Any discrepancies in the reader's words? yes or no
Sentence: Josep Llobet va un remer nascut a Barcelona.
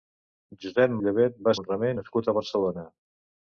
no